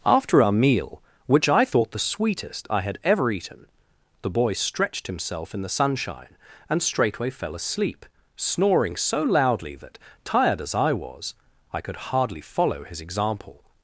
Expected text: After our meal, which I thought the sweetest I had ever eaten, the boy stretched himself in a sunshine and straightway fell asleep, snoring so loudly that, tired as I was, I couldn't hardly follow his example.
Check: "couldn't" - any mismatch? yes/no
yes